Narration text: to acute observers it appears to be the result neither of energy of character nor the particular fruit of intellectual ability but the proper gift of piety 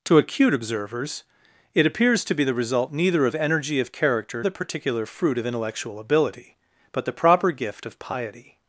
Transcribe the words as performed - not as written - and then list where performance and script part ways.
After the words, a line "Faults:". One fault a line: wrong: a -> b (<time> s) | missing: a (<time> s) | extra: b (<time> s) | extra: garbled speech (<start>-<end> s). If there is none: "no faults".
to acute observers it appears to be the result neither of energy of character the particular fruit of intellectual ability but the proper gift of piety
Faults:
missing: nor (4.4 s)